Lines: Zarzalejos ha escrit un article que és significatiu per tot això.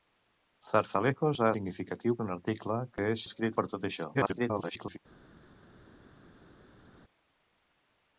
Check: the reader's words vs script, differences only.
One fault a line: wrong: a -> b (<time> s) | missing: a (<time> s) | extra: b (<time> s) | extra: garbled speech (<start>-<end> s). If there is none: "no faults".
wrong: escrit -> significatiu (1.5 s)
wrong: significatiu -> escrit (3.3 s)
extra: garbled speech (4.1-5.0 s)